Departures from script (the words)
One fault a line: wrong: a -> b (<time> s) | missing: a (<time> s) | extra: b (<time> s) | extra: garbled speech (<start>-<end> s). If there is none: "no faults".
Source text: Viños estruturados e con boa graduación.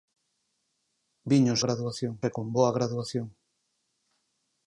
wrong: estruturados -> graduación (1.6 s)